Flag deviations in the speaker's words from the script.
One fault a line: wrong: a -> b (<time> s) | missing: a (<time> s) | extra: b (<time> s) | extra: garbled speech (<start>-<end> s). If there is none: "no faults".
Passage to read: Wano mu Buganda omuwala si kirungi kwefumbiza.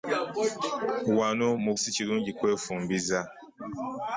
missing: Buganda omuwala (1.7 s)